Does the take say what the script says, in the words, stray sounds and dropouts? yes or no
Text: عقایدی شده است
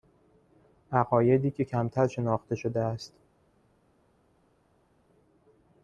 no